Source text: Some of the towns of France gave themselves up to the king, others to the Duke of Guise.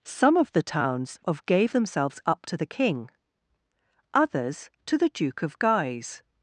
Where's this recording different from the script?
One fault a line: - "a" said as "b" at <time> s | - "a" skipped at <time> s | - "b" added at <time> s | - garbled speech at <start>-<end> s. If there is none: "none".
- "France" skipped at 1.4 s